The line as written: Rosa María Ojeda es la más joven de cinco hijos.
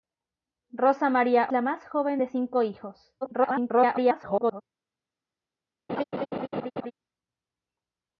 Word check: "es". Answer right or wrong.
wrong